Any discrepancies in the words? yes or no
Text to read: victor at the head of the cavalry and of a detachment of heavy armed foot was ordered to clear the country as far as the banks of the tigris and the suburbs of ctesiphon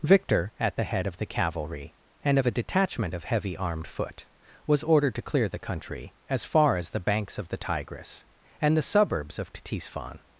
no